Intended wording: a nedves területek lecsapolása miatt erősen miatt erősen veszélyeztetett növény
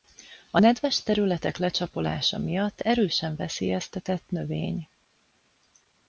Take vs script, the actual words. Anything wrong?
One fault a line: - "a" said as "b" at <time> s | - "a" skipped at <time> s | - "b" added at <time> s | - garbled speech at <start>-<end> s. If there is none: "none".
- "miatt erősen" skipped at 3.3 s